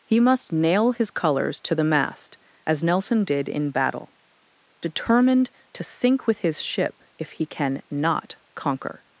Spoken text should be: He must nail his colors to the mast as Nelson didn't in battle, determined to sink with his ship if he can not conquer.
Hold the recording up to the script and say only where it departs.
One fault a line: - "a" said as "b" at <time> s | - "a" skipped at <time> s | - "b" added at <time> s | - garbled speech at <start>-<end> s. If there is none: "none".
- "didn't" said as "did" at 3.2 s